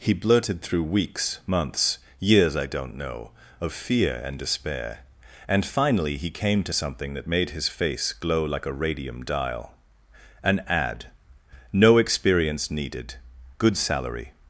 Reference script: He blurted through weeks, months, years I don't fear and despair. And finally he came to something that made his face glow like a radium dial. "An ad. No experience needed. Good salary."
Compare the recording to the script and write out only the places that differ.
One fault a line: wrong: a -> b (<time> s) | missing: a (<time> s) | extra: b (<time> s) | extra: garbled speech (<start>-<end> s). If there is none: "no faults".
extra: know of (3.0 s)